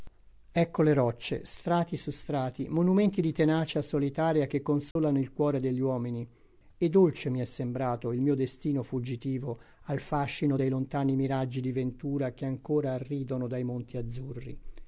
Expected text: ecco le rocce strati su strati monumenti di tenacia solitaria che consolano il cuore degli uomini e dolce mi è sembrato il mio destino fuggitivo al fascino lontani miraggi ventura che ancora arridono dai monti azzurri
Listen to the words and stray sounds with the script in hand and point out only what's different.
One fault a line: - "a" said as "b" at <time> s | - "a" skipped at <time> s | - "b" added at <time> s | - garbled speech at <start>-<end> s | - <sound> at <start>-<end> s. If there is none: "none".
- dropout at 4.9-5.0 s
- "dei" added at 10.5 s
- "di" added at 11.6 s